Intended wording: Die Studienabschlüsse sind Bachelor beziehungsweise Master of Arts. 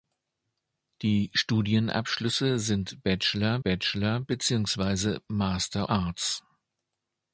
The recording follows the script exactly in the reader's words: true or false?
false